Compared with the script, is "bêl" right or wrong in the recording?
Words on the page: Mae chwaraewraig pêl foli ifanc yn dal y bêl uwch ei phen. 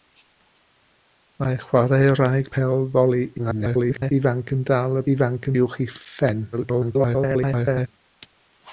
wrong